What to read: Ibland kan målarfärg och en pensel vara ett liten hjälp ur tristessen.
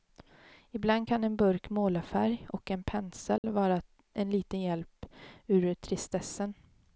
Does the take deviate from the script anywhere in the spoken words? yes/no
yes